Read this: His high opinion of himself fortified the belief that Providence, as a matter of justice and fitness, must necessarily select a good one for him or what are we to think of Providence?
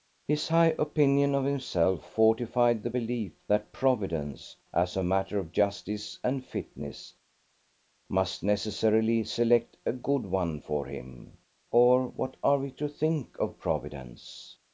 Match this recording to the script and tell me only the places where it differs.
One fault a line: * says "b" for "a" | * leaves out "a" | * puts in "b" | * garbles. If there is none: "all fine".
all fine